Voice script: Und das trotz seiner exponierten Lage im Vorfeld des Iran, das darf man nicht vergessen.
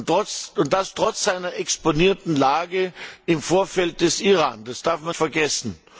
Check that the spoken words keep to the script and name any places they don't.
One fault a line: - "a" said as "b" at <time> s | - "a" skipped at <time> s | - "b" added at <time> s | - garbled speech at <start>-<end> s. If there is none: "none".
- "nicht" skipped at 5.2 s